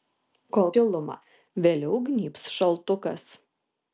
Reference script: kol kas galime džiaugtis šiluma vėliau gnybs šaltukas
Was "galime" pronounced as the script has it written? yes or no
no